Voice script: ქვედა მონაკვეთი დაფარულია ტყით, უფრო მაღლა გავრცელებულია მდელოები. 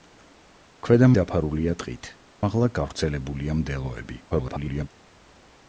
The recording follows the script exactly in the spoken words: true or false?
false